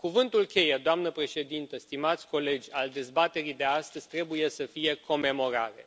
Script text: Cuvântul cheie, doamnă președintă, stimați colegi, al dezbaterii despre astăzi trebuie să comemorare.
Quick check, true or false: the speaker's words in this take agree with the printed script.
false